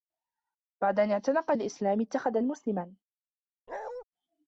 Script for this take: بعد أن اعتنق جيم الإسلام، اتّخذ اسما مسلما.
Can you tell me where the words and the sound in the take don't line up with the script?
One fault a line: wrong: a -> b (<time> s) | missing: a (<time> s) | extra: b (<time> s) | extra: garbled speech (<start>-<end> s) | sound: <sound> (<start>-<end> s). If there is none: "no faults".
missing: جيم (1.5 s)
missing: اسما (2.4 s)
sound: bark (3.7-4.0 s)